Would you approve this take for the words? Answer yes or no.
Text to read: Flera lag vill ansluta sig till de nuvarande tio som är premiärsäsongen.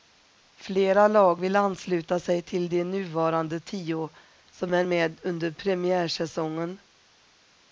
no